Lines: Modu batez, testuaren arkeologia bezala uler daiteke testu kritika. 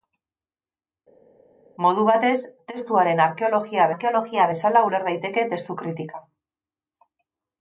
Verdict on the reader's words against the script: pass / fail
fail